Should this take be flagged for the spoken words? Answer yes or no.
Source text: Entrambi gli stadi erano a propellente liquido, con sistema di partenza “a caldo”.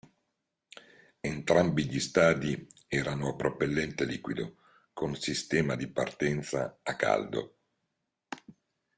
no